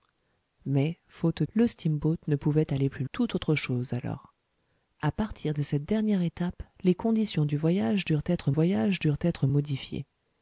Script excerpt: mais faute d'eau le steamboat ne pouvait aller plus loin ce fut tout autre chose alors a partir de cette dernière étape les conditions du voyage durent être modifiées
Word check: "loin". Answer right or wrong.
wrong